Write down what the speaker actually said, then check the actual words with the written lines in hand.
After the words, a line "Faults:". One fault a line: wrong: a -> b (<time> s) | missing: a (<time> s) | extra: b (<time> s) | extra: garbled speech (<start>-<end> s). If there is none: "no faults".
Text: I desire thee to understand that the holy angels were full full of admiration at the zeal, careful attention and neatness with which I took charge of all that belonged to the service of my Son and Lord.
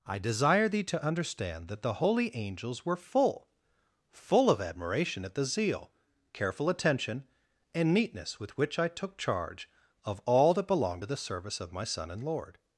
I desire thee to understand that the holy angels were full full of admiration at the zeal, careful attention and neatness with which I took charge of all that belonged to the service of my Son and Lord.
Faults:
no faults